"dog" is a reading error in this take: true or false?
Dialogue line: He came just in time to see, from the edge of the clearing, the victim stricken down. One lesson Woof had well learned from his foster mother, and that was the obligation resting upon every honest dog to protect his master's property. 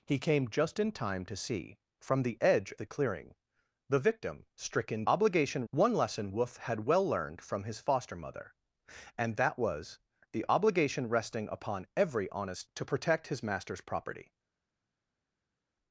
true